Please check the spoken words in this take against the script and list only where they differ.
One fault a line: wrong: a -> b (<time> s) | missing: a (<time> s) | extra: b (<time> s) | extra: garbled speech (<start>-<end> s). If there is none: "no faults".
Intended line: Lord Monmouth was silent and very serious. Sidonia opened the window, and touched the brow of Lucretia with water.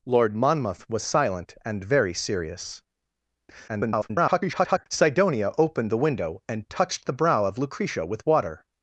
extra: garbled speech (3.7-4.9 s)